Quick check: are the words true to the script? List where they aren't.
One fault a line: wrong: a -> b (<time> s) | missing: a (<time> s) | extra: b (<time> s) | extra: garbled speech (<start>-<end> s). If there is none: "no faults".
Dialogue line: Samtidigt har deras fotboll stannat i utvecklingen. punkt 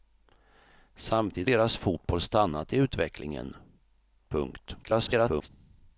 missing: har (1.5 s)
extra: garbled speech (4.8-5.5 s)